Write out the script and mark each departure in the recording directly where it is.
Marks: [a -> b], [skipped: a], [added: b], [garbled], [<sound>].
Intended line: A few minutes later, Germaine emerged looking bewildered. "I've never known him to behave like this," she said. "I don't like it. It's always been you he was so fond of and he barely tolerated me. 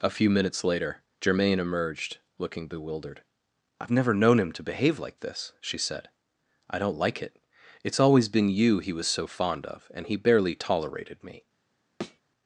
A few minutes later, Germaine emerged looking bewildered. "I've never known him to behave like this," she said. "I don't like it. It's always been you he was so fond of and he barely tolerated me. [thud]